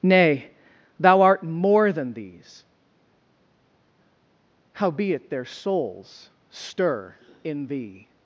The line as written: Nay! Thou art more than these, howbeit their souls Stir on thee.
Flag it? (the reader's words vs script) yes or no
yes